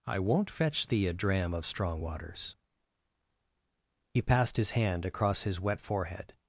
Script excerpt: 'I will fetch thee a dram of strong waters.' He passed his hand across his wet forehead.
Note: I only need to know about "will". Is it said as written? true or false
false